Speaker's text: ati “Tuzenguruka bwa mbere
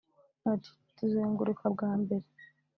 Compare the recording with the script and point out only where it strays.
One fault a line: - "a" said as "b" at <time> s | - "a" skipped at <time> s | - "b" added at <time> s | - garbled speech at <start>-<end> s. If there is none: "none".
none